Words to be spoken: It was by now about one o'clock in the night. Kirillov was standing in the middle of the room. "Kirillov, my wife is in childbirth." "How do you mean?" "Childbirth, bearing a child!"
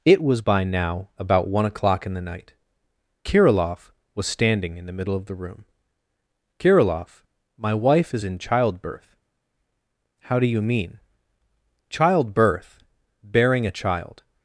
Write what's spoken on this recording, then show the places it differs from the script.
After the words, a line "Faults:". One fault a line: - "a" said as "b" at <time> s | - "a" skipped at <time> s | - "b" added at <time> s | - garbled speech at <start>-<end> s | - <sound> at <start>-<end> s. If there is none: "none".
It was by now about one o'clock in the night. Kirillov was standing in the middle of the room. "Kirillov, my wife is in childbirth." "How do you mean?" "Childbirth, bearing a child!"
Faults:
none